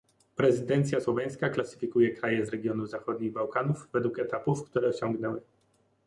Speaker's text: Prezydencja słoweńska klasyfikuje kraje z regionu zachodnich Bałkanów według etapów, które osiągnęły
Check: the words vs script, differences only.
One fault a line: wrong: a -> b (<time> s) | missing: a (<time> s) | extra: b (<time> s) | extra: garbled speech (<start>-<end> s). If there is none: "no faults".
no faults